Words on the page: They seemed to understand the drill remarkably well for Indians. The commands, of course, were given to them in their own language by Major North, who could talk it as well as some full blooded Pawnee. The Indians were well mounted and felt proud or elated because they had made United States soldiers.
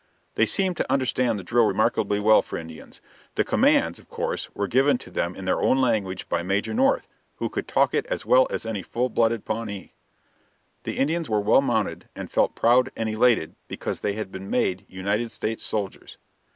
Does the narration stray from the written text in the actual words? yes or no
yes